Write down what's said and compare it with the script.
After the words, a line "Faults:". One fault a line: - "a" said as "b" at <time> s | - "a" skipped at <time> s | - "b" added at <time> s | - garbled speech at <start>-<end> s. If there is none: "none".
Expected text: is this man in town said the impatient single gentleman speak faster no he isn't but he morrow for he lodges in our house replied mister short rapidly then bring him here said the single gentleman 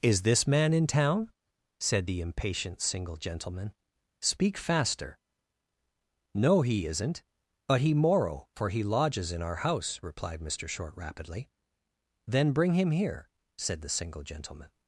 is this man in town said the impatient single gentleman speak faster no he isn't but he morrow for he lodges in our house replied mister short rapidly then bring him here said the single gentleman
Faults:
none